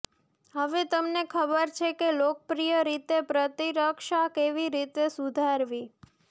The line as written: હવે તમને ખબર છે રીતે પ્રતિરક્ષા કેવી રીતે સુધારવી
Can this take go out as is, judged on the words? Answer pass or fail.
fail